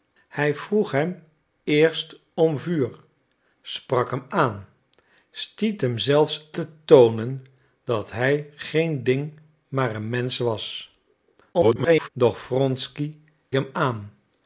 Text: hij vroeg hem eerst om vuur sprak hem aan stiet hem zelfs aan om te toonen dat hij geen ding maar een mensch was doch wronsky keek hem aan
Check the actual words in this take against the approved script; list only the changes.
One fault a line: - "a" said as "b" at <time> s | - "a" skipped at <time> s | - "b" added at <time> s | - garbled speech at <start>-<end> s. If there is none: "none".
- "aan om" skipped at 6.5 s
- garbled speech at 11.5-12.1 s
- "keek" skipped at 13.1 s